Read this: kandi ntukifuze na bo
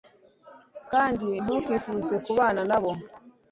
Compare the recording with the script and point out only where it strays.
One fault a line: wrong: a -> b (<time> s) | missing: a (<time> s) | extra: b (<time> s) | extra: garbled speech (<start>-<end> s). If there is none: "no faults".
extra: kubana (2.3 s)